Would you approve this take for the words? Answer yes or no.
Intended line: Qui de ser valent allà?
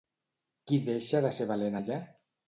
no